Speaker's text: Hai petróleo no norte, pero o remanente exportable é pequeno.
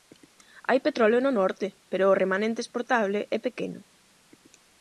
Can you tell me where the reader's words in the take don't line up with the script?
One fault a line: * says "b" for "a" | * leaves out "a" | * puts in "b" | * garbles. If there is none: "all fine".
all fine